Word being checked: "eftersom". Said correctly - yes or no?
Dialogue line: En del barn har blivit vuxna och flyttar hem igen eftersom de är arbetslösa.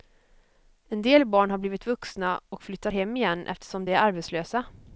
yes